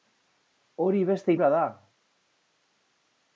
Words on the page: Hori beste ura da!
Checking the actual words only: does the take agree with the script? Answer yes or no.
yes